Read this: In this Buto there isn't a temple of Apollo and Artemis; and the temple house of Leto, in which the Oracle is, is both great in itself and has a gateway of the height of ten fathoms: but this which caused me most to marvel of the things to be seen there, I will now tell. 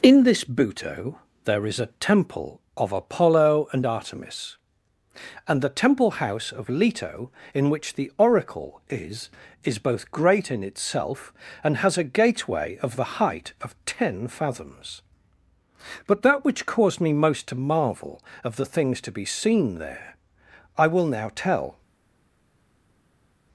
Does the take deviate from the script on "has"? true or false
false